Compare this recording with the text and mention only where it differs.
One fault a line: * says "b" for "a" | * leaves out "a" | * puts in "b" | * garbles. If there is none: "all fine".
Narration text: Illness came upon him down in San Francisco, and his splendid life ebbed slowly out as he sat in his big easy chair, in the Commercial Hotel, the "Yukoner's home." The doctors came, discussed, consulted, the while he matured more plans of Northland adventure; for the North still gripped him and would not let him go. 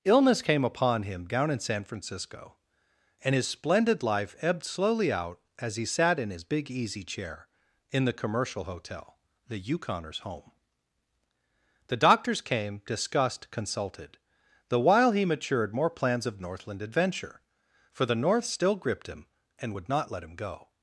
all fine